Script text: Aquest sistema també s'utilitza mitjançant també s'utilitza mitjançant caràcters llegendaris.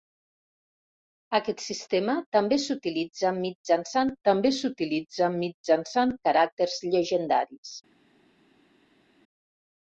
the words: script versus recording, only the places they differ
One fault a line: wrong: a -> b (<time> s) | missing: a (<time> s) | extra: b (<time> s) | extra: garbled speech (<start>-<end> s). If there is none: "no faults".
no faults